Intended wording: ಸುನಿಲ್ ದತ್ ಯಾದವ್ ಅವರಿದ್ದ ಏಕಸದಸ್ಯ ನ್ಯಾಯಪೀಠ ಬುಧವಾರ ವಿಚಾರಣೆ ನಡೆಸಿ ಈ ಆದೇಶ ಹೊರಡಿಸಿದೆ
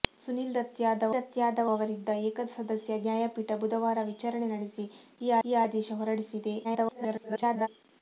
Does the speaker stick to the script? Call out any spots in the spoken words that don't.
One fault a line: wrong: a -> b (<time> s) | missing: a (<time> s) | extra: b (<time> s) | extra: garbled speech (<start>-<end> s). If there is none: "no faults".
extra: ದತ್ ಯಾದವ್ (1.1 s)
extra: ಈ (5.4 s)
extra: garbled speech (6.6-7.7 s)